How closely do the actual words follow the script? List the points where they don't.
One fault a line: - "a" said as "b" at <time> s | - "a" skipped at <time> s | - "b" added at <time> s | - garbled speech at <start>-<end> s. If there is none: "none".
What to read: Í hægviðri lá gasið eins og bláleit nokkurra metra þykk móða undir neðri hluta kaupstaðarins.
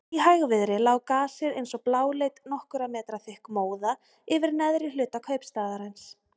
- "undir" said as "yfir" at 4.4 s